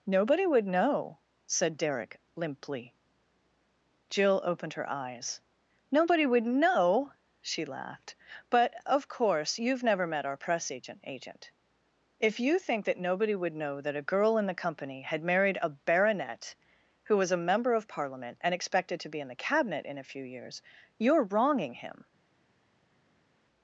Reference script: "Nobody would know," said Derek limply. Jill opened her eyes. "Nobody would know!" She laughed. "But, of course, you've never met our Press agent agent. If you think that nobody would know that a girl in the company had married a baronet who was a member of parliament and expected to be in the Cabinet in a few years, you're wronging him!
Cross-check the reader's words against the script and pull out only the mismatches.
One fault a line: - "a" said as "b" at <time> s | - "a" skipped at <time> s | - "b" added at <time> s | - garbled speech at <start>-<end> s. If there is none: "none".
none